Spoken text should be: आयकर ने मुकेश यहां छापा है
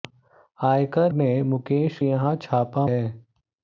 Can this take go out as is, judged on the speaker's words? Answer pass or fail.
pass